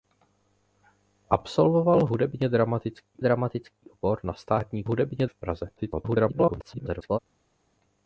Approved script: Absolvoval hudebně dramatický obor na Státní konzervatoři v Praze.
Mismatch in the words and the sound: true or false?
true